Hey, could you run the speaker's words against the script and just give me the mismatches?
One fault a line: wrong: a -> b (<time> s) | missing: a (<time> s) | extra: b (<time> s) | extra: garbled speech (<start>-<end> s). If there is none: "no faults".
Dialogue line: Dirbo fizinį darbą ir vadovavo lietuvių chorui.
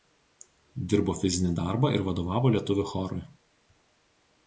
no faults